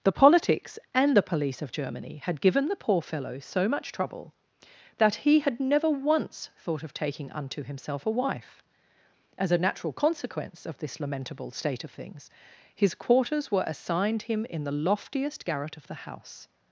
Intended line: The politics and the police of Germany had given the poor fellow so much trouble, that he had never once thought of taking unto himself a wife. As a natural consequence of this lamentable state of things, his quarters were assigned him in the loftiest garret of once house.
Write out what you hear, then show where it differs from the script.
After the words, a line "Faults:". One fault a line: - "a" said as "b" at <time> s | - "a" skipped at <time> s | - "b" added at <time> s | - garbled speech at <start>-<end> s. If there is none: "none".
The politics and the police of Germany had given the poor fellow so much trouble, that he had never once thought of taking unto himself a wife. As a natural consequence of this lamentable state of things, his quarters were assigned him in the loftiest garret of the house.
Faults:
- "once" said as "the" at 15.9 s